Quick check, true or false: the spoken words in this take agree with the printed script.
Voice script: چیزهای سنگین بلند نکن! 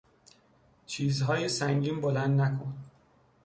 true